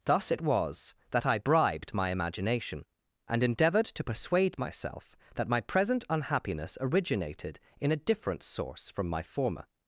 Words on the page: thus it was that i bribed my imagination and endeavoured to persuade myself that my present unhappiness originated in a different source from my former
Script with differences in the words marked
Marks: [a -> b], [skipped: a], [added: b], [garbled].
thus it was that i bribed my imagination and endeavoured to persuade myself that my present unhappiness originated in a different source from my former